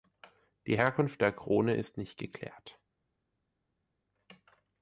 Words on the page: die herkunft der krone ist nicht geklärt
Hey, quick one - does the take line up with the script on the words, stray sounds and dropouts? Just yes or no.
yes